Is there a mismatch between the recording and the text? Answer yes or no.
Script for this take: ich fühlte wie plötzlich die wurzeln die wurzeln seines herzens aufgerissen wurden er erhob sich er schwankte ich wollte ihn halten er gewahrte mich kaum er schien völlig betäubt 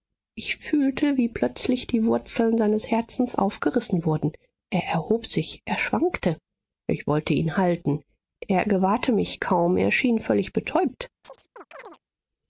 yes